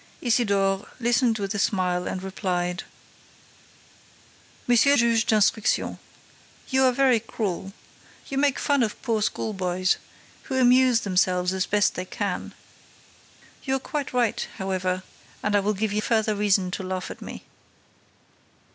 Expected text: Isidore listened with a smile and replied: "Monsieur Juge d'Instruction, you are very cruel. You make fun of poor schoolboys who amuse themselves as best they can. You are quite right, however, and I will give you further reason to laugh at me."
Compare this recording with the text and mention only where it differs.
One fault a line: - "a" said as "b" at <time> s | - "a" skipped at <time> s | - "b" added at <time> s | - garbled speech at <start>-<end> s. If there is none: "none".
none